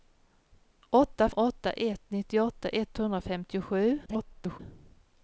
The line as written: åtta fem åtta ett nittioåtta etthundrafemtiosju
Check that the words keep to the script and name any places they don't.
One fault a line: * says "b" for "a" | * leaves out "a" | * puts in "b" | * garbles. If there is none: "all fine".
* leaves out "fem"
* garbles